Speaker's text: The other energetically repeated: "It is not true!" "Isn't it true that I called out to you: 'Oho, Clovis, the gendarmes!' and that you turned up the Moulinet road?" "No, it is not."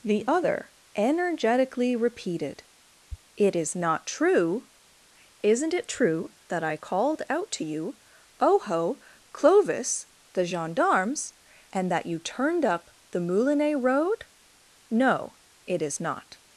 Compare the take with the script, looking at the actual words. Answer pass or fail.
pass